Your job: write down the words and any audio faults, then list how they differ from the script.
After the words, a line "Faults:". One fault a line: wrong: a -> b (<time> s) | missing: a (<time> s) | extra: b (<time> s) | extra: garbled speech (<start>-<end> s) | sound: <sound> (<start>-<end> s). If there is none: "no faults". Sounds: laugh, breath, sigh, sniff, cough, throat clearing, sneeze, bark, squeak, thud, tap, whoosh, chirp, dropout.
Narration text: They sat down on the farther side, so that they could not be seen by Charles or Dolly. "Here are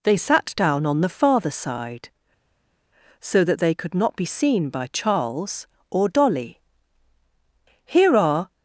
They sat down on the farther side, so that they could not be seen by Charles or Dolly. "Here are
Faults:
no faults